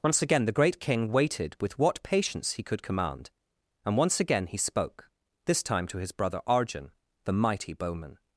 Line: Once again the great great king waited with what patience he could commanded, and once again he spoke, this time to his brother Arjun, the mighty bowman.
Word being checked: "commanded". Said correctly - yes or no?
no